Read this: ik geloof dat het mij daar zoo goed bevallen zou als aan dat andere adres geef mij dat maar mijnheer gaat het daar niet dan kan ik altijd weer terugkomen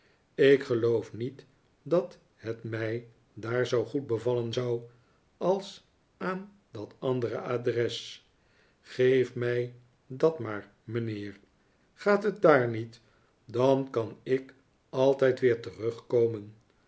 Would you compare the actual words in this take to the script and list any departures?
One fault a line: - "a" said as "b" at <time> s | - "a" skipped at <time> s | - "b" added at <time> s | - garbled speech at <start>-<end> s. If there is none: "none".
- "niet" added at 1.1 s